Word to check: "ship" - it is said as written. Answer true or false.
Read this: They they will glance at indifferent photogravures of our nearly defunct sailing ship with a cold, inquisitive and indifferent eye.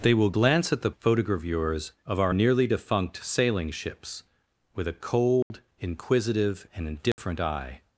false